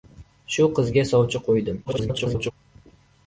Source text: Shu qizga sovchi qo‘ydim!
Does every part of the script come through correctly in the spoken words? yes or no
no